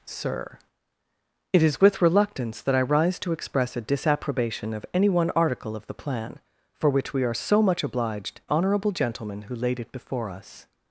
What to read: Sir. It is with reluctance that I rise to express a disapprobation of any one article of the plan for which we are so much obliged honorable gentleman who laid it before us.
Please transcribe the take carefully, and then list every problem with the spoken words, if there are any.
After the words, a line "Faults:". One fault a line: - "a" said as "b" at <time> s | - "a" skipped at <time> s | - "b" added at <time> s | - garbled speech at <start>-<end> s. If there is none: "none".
Sir. It is with reluctance that I rise to express a disapprobation of any one article of the plan for which we are so much obliged honorable gentleman who laid it before us.
Faults:
none